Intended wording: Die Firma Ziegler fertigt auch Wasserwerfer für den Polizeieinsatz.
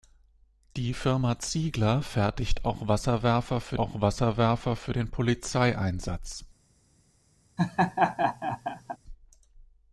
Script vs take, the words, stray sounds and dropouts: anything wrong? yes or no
yes